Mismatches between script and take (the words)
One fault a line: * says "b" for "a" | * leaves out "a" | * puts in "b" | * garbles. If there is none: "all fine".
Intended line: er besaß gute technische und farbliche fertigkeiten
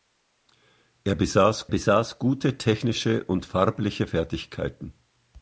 * puts in "besaß"